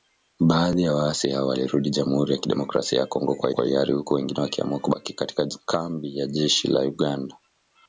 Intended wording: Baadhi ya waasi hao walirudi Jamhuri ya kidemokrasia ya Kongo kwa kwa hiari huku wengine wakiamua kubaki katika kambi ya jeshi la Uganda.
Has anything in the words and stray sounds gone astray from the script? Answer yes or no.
no